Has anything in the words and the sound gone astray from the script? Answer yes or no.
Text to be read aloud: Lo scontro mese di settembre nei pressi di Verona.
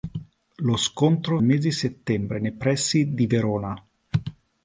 no